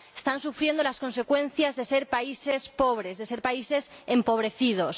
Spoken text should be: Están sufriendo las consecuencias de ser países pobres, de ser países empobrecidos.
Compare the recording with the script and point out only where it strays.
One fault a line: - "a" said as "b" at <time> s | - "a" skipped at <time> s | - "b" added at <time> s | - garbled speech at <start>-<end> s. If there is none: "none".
none